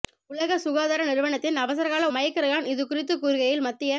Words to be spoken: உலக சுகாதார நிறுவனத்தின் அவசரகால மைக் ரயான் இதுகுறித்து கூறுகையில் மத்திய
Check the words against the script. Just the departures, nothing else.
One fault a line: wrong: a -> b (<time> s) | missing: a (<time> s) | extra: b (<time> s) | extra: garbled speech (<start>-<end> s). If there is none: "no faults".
no faults